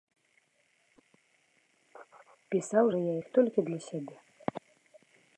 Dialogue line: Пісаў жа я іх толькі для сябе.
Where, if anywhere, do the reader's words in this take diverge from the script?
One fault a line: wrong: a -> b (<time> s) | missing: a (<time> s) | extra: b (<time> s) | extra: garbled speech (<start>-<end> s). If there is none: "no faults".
no faults